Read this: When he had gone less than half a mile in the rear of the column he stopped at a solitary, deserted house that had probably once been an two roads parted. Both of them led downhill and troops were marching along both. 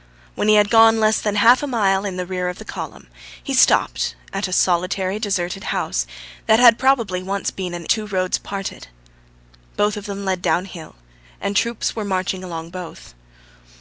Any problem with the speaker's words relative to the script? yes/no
no